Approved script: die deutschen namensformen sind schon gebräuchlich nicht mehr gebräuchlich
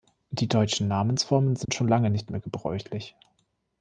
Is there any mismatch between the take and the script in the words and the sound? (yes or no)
yes